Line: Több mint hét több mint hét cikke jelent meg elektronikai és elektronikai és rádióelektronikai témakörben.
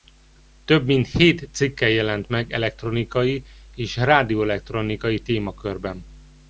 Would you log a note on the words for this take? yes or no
yes